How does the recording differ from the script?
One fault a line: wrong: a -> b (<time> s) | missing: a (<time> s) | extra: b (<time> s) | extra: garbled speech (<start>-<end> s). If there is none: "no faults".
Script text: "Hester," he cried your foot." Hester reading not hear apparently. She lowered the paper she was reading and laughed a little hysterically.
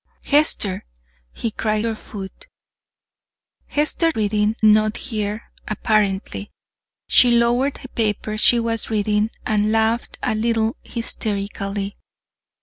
no faults